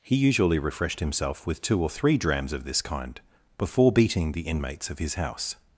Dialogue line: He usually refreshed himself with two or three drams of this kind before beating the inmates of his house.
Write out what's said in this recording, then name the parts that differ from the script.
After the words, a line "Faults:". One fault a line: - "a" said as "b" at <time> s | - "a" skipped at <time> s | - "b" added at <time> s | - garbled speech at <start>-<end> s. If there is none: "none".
He usually refreshed himself with two or three drams of this kind before beating the inmates of his house.
Faults:
none